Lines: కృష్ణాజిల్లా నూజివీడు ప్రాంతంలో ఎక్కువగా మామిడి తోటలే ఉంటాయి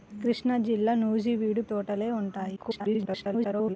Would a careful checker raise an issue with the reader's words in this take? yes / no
yes